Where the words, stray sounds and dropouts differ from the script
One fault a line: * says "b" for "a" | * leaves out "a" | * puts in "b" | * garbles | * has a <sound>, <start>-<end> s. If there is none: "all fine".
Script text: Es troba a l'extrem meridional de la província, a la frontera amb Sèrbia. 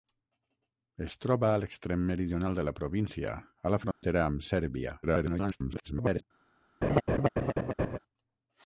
* has a dropout, 3.9-4.0 s
* garbles
* has a laugh, 6.8-8.0 s